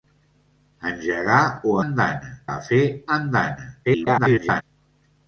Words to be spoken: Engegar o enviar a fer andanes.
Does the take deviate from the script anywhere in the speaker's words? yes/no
yes